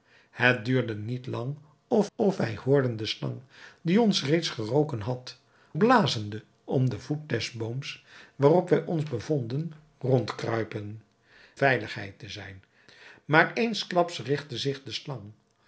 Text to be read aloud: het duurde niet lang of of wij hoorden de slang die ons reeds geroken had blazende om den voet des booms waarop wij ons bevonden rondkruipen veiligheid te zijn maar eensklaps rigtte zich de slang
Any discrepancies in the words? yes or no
no